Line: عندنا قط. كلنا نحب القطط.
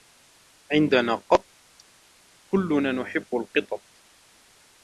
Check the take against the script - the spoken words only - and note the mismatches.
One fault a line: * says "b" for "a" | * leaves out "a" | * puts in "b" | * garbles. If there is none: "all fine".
all fine